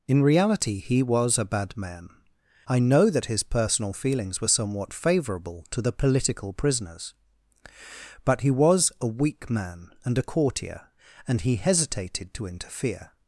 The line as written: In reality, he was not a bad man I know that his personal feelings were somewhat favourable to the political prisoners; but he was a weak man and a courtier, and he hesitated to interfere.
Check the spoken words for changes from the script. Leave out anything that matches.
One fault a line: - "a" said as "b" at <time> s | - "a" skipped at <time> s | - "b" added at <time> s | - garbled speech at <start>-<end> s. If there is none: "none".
- "not" skipped at 1.4 s